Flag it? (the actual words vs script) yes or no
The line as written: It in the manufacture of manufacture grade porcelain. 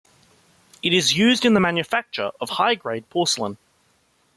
yes